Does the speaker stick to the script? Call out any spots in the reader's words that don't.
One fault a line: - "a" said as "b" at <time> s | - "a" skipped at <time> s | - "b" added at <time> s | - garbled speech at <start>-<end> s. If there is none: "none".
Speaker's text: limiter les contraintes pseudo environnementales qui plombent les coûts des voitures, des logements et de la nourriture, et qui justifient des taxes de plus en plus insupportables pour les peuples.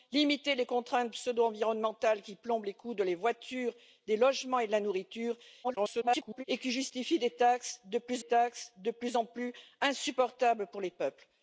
- garbled speech at 5.6-6.4 s
- "taxes de plus" added at 8.2 s